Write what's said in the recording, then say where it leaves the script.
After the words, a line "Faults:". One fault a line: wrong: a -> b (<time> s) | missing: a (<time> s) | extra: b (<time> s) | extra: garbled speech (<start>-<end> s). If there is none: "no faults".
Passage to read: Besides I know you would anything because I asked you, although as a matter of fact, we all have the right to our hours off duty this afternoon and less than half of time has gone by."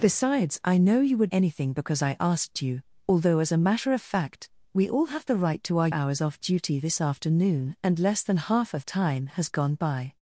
Besides I know you would anything because I asked you, although as a matter of fact, we all have the right to our hours off duty this afternoon and less than half of time has gone by."
Faults:
no faults